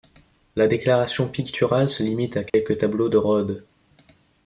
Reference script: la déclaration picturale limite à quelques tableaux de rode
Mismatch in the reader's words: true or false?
true